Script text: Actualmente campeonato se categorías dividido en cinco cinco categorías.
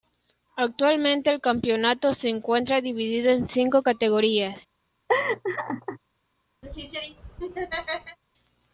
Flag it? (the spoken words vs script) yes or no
yes